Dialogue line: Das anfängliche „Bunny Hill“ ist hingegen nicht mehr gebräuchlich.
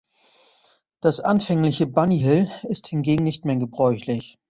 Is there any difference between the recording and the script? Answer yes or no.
no